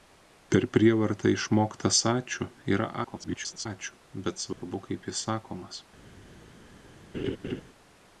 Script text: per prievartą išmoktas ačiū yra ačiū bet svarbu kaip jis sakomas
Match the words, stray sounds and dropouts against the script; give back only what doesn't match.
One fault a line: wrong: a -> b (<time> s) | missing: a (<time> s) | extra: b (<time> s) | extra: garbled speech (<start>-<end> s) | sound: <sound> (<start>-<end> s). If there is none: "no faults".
extra: garbled speech (3.0-3.7 s)
sound: dropout (4.5-4.6 s)
sound: laugh (7.1-7.6 s)